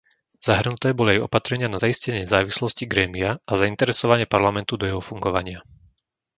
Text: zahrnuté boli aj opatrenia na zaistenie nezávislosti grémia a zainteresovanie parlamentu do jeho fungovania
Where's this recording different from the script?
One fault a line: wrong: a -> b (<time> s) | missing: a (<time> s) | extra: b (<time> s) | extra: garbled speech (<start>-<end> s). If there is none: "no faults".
no faults